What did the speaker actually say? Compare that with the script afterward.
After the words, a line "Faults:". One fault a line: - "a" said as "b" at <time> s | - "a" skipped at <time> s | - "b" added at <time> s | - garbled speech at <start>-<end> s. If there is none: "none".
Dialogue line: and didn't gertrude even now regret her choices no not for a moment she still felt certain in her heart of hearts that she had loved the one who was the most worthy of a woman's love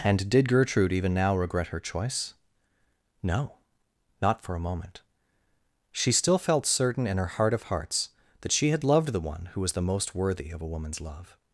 and did gertrude even now regret her choice no not for a moment she still felt certain in her heart of hearts that she had loved the one who was the most worthy of a woman's love
Faults:
- "didn't" said as "did" at 0.3 s
- "choices" said as "choice" at 1.8 s